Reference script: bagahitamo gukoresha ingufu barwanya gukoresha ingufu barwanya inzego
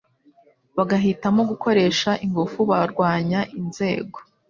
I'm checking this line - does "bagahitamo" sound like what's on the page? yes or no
yes